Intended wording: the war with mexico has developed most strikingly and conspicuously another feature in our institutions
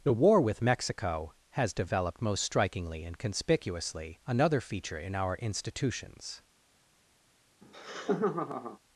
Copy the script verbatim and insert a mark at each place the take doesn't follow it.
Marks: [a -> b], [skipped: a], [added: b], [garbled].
the war with mexico has developed most strikingly and conspicuously another feature in our institutions